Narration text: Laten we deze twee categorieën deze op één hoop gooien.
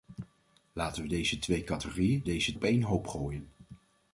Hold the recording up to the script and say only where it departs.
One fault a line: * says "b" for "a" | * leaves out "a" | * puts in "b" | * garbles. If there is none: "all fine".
all fine